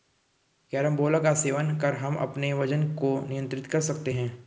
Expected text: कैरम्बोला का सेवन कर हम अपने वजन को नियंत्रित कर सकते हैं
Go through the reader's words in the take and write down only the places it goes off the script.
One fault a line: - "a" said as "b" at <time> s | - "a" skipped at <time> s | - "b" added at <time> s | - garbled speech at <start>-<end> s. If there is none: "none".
none